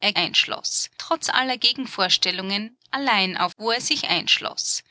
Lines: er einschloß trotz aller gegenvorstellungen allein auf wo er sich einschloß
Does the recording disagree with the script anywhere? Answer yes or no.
no